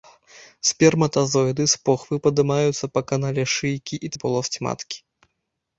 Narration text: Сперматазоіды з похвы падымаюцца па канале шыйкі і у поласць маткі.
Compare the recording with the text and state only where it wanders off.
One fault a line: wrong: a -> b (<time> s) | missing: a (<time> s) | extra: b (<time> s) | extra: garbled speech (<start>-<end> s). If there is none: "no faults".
no faults